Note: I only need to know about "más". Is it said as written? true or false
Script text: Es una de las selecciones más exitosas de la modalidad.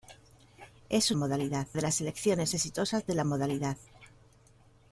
false